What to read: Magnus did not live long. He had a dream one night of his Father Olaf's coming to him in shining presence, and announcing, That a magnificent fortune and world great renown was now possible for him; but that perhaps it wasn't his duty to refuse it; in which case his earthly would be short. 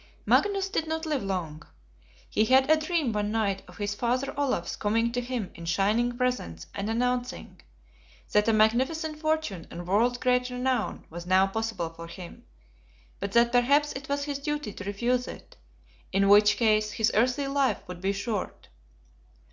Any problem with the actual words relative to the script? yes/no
yes